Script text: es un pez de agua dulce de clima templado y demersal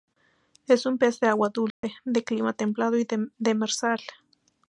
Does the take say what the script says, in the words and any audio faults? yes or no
no